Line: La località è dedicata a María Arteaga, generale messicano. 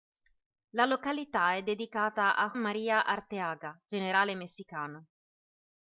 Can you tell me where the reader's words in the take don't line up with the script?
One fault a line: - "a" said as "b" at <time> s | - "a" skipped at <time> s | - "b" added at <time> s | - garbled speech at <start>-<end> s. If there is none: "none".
none